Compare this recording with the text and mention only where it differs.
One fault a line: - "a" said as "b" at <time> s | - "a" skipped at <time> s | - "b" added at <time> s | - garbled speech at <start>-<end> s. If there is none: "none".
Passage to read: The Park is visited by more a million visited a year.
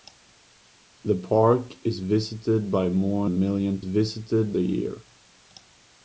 none